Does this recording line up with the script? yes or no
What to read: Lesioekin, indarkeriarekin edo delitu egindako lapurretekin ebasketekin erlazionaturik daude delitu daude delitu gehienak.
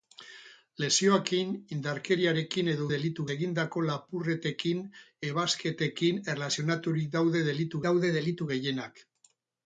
yes